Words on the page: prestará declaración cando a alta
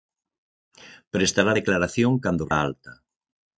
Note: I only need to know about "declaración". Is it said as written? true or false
true